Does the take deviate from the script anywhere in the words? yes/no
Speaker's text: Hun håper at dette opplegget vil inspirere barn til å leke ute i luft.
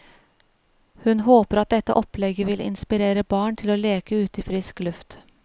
yes